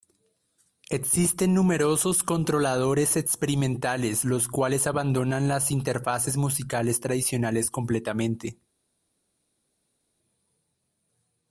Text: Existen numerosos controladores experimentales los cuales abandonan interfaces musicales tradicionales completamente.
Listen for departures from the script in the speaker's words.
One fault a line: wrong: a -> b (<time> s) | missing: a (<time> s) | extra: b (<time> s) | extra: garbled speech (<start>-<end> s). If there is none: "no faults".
extra: las (5.5 s)